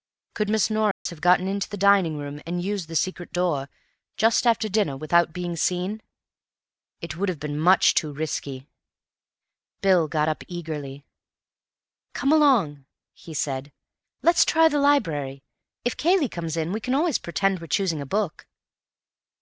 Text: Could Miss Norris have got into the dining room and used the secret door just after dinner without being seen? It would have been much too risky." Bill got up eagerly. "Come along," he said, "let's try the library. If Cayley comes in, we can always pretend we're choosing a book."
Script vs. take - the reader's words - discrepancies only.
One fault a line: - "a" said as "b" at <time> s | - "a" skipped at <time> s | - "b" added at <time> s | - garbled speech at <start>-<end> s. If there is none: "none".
none